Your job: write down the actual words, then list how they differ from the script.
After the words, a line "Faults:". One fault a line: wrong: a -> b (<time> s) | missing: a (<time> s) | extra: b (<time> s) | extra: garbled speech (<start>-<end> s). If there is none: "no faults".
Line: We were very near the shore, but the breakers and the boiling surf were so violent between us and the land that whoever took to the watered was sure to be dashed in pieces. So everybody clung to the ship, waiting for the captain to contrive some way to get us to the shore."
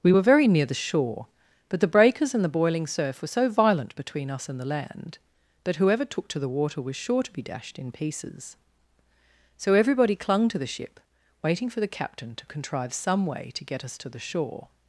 We were very near the shore, but the breakers and the boiling surf were so violent between us and the land that whoever took to the water was sure to be dashed in pieces. So everybody clung to the ship, waiting for the captain to contrive some way to get us to the shore."
Faults:
wrong: watered -> water (6.5 s)